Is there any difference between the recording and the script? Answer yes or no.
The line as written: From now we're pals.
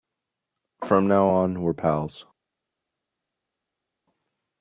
yes